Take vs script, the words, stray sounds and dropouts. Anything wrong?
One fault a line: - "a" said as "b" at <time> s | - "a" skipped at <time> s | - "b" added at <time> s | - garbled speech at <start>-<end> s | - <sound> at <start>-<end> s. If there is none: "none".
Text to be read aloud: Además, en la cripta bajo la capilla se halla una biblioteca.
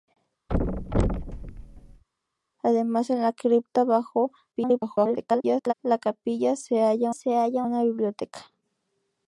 - thud at 0.5-2.0 s
- garbled speech at 4.5-5.7 s
- "se halla" added at 7.1 s